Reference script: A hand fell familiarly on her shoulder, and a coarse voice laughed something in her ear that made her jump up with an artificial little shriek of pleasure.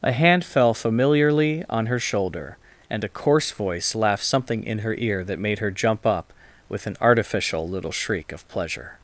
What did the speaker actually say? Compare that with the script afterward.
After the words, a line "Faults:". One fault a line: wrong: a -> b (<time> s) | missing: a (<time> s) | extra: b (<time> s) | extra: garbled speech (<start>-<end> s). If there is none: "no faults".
A hand fell familiarly on her shoulder, and a coarse voice laughed something in her ear that made her jump up with an artificial little shriek of pleasure.
Faults:
no faults